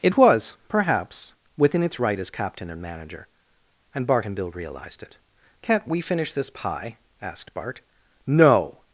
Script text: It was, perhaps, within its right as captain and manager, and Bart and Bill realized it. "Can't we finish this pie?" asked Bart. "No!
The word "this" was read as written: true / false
true